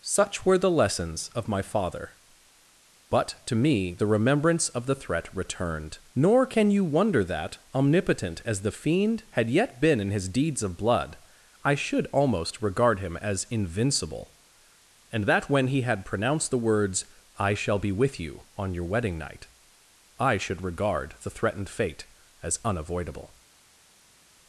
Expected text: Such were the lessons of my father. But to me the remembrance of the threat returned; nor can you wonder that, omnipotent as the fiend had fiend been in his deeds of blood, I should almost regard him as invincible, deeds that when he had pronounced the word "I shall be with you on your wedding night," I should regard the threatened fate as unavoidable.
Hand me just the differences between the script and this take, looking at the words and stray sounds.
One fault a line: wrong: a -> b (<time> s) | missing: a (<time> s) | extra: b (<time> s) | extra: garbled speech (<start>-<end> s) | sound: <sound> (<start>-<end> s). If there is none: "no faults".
wrong: fiend -> yet (9.5 s)
wrong: deeds -> and (15.1 s)
wrong: word -> words (16.6 s)